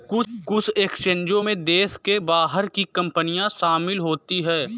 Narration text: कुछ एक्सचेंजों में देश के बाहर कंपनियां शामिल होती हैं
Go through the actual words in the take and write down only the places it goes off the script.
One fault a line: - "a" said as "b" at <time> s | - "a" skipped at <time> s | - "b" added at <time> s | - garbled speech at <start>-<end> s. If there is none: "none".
- "की" added at 2.7 s